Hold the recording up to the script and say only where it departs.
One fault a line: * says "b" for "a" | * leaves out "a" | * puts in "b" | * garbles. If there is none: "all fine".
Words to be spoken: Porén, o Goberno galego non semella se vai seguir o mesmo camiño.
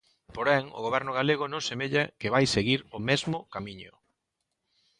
* says "que" for "se"